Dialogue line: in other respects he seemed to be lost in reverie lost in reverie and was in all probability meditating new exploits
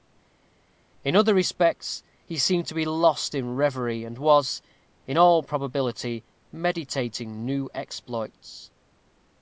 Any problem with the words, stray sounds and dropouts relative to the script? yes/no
yes